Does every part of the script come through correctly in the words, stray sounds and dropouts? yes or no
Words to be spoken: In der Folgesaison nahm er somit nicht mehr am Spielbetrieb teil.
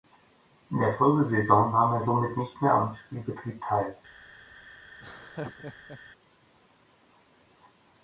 no